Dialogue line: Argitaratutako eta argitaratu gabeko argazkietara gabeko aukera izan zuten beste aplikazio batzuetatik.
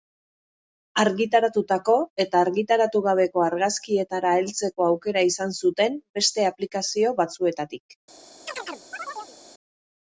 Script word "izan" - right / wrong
right